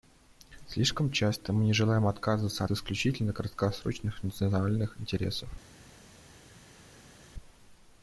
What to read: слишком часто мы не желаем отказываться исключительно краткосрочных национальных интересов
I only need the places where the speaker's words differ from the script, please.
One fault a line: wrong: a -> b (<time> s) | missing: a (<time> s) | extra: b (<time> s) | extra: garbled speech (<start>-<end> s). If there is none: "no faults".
no faults